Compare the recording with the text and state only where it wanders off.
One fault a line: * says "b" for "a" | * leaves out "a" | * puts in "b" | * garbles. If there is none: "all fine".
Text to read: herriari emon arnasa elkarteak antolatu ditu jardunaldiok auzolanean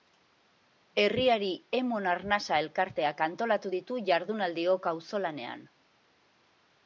all fine